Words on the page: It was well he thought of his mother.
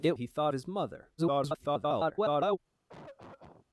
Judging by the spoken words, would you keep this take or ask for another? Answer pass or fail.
fail